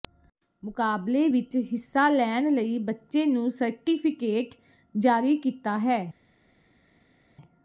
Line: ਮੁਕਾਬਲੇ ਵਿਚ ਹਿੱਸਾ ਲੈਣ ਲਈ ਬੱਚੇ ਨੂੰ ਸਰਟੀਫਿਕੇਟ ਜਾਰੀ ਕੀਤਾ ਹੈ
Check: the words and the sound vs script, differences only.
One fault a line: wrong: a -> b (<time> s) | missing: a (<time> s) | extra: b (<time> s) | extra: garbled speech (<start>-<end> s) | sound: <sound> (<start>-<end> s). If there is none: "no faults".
no faults